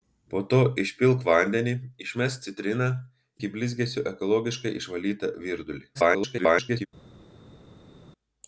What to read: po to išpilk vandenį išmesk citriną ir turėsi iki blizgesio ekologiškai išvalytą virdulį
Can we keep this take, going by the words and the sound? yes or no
no